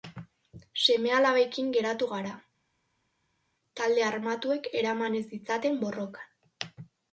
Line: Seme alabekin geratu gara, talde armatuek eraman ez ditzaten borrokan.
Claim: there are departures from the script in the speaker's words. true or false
false